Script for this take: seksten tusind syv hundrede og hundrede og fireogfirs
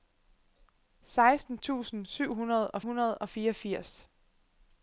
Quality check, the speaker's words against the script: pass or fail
pass